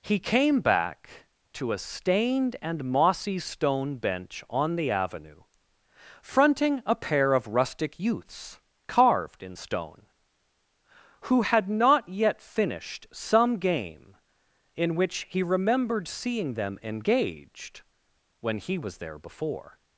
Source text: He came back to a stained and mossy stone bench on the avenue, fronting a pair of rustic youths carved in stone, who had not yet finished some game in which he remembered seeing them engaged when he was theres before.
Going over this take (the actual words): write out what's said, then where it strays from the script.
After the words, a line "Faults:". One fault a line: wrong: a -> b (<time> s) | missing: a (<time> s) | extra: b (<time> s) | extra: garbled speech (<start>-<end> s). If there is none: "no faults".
He came back to a stained and mossy stone bench on the avenue, fronting a pair of rustic youths carved in stone, who had not yet finished some game in which he remembered seeing them engaged when he was there before.
Faults:
wrong: theres -> there (19.0 s)